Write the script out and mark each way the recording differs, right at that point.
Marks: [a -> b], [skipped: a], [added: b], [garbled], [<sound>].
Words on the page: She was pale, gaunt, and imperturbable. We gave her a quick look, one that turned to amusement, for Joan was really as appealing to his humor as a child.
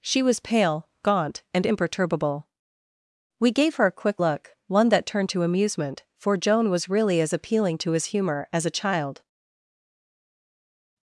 She was pale, gaunt, and imperturbable. We gave her a quick look, one that turned to amusement, for Joan was really as appealing to his humor as a child.